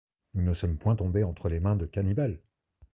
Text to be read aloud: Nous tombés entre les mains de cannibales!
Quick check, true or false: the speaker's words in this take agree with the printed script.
false